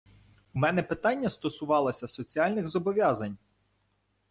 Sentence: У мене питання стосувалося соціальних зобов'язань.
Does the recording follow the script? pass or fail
pass